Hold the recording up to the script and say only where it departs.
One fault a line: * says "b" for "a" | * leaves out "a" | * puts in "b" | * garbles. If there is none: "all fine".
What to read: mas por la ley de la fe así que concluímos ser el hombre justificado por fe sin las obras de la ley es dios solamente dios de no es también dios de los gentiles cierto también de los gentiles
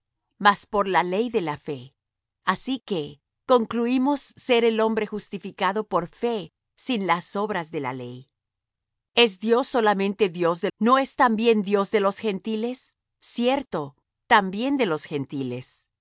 all fine